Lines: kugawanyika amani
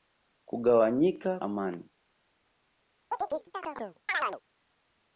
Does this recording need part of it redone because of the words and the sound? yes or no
yes